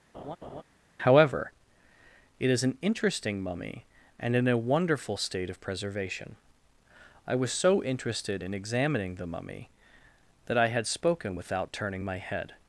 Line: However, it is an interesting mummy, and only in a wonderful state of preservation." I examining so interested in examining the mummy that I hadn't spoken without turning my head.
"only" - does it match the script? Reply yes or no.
no